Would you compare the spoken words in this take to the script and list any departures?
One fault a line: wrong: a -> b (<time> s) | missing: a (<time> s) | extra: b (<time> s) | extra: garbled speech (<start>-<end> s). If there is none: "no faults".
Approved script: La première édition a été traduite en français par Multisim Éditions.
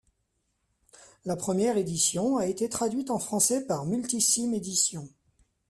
no faults